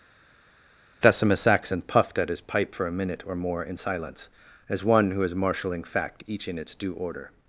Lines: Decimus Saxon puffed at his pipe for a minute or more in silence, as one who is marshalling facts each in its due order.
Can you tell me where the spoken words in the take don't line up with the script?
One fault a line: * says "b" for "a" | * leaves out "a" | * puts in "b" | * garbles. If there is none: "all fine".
* says "fact" for "facts"